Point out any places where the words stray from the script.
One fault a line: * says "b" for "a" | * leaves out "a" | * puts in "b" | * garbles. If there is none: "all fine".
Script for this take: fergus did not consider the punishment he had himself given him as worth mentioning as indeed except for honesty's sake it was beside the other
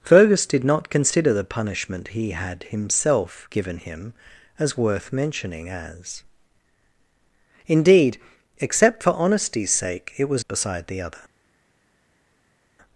all fine